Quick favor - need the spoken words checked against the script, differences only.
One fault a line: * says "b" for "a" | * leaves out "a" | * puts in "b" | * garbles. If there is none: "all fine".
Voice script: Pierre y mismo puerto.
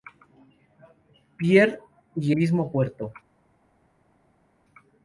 all fine